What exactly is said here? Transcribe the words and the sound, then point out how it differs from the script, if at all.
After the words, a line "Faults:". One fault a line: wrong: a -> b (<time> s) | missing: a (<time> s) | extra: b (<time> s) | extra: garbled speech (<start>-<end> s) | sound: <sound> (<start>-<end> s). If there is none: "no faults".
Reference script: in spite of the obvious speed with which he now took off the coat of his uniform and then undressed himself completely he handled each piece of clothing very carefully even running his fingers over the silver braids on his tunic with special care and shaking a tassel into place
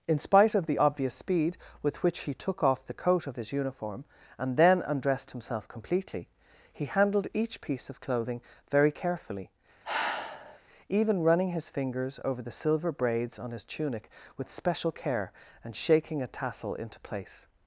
in spite of the obvious speed with which he took off the coat of his uniform and then undressed himself completely he handled each piece of clothing very carefully even running his fingers over the silver braids on his tunic with special care and shaking a tassel into place
Faults:
missing: now (2.3 s)
sound: sigh (9.8-10.6 s)